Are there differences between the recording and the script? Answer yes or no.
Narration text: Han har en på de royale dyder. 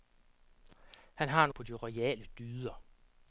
no